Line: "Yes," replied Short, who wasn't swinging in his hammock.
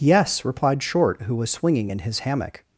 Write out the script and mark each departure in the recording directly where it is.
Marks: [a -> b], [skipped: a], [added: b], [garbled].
"Yes," replied Short, who [wasn't -> was] swinging in his hammock.